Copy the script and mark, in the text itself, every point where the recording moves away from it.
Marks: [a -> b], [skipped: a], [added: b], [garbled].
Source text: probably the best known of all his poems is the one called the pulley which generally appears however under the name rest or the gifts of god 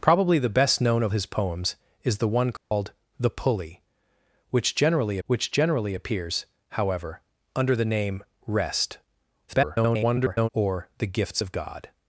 probably the best known of [skipped: all] his poems is the one called the pulley which generally [added: which generally] appears however under the name rest [garbled] or the gifts of god